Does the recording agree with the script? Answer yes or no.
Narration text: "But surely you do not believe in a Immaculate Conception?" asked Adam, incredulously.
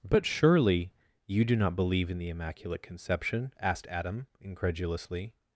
no